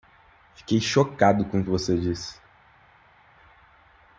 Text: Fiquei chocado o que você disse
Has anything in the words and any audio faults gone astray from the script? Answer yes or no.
yes